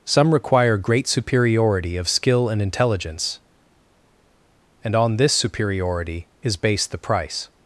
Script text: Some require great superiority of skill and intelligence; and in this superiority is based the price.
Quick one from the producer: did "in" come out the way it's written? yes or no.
no